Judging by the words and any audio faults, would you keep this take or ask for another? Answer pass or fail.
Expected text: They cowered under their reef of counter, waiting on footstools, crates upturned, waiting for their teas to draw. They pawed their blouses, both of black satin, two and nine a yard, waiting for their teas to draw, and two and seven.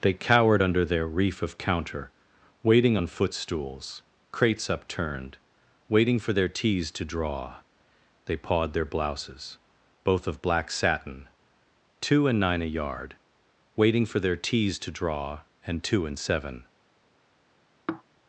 fail